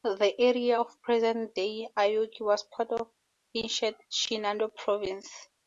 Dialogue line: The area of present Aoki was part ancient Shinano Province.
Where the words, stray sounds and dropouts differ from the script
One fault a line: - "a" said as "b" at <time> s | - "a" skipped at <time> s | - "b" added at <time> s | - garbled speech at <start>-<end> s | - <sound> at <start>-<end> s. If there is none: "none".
- "day" added at 1.5 s
- "of" added at 2.9 s